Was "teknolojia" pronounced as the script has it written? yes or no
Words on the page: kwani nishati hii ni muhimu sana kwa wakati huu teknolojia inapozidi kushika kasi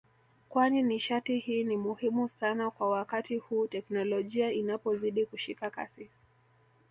yes